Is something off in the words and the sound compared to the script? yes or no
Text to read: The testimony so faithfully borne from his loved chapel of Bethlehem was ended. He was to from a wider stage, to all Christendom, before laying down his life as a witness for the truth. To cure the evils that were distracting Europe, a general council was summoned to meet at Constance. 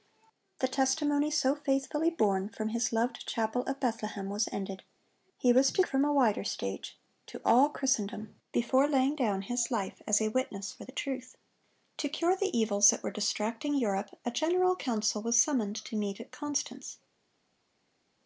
no